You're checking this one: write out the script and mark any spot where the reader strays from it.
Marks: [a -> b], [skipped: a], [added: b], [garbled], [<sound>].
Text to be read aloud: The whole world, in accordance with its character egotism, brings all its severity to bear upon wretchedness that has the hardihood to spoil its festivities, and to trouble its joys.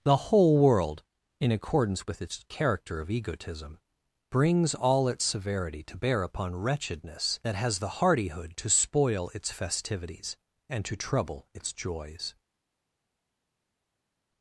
The whole world, in accordance with its character [added: of] egotism, brings all its severity to bear upon wretchedness that has the hardihood to spoil its festivities, and to trouble its joys.